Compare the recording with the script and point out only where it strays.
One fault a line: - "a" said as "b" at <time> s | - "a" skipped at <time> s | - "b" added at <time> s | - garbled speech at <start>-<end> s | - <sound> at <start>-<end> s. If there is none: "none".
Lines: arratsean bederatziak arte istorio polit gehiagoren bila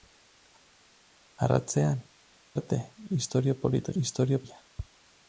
- "bederatziak" skipped at 2.0 s
- "gehiagoren" said as "istorio" at 4.0 s